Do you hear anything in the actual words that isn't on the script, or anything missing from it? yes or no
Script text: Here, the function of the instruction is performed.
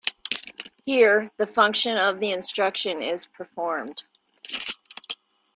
no